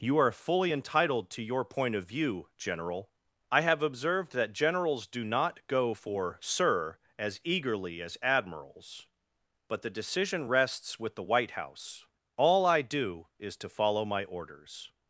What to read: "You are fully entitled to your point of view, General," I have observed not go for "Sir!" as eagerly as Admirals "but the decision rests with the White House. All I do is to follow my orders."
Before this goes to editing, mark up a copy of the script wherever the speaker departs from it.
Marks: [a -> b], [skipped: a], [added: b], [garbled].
"You are fully entitled to your point of view, General," I have observed [added: that Generals do] not go for "Sir!" as eagerly as Admirals "but the decision rests with the White House. All I do is to follow my orders."